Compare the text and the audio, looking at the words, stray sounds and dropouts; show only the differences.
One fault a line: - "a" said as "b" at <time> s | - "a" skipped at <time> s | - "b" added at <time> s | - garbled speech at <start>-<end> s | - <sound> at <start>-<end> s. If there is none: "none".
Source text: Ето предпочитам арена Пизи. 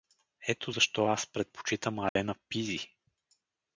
- "защо аз" added at 0.7 s
- dropout at 2.1-2.2 s